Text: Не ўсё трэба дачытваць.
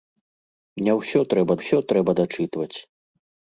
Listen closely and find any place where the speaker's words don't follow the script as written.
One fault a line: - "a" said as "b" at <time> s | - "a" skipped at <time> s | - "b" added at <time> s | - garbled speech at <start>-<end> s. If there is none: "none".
- "ўсё трэба" added at 1.6 s